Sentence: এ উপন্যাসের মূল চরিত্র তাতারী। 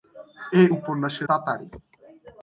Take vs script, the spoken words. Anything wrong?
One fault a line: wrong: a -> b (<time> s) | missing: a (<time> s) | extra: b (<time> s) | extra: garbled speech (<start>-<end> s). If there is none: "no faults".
missing: মূল চরিত্র (1.3 s)